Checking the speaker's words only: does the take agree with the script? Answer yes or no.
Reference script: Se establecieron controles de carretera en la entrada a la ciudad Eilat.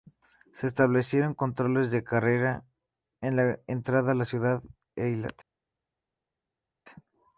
no